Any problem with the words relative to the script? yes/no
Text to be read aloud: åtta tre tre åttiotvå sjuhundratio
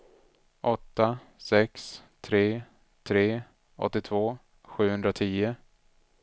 yes